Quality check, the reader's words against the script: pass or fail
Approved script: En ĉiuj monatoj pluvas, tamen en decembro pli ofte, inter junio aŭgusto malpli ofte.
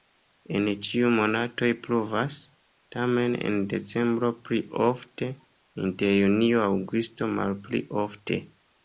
pass